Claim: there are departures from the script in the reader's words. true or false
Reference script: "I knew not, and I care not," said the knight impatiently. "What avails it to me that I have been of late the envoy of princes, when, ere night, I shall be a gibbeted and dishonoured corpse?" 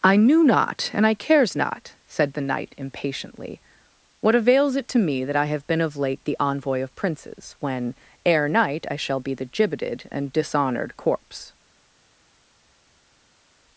true